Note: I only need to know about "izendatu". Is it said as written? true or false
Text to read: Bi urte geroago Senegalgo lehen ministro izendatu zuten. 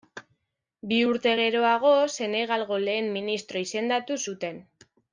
true